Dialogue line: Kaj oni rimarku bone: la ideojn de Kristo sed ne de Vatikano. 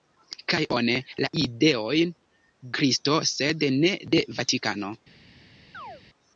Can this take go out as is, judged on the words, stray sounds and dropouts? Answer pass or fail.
fail